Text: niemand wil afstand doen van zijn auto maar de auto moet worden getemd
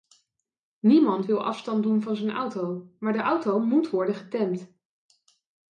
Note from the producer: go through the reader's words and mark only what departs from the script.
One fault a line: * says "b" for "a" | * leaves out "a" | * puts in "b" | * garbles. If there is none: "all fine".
all fine